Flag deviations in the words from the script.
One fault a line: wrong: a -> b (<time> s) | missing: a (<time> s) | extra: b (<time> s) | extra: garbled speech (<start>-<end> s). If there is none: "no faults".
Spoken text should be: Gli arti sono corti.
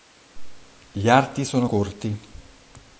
no faults